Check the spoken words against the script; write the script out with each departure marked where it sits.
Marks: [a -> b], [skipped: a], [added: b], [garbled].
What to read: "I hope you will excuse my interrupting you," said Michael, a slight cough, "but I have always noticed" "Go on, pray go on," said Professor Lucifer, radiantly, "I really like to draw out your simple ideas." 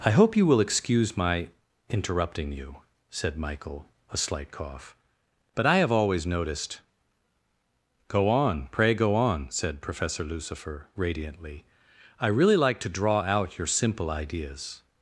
"I hope you will excuse my interrupting you," said Michael, a slight cough, "but I have always noticed" "Go on, pray go on," said Professor Lucifer, radiantly, "I really like to draw out your simple ideas."